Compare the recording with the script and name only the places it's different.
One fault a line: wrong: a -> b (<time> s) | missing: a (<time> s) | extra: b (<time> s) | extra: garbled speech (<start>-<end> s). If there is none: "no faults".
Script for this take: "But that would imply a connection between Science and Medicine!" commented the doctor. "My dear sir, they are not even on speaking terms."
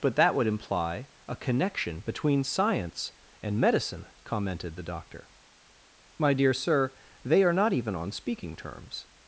no faults